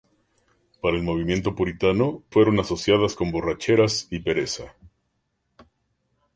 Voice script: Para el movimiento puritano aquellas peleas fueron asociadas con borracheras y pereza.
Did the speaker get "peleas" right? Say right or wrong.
wrong